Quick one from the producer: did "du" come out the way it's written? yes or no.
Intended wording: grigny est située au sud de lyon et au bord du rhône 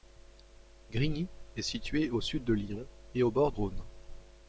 no